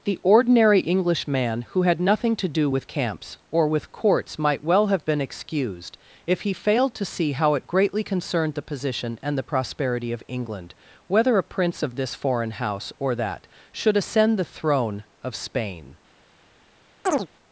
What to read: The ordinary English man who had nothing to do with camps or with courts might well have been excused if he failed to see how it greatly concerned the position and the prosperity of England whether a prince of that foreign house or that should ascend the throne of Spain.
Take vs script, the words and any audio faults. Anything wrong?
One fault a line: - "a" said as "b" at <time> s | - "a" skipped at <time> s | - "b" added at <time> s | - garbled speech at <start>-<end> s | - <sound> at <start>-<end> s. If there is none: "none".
- "that" said as "this" at 11.9 s
- chirp at 17.0-17.3 s